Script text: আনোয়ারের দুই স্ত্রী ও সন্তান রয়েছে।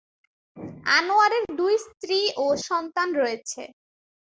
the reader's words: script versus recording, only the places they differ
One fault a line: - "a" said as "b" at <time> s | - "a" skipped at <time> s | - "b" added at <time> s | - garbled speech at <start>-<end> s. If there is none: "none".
none